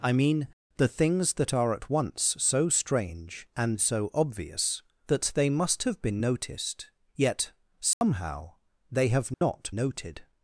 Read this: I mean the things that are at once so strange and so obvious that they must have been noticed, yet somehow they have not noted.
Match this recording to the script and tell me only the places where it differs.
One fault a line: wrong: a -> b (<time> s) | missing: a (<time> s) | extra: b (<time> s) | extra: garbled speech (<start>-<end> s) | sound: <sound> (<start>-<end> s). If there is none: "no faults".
sound: dropout (7.9-8.0 s)
sound: dropout (9.3-9.4 s)